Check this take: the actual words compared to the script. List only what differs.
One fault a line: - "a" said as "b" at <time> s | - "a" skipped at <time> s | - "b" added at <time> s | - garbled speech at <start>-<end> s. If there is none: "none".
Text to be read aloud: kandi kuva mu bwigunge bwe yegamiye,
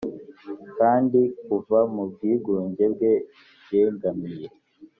none